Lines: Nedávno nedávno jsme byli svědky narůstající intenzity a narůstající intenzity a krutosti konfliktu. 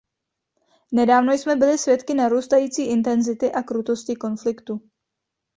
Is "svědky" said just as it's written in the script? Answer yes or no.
yes